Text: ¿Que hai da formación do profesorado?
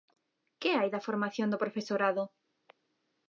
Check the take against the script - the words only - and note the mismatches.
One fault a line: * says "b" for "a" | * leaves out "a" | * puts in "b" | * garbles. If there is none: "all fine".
all fine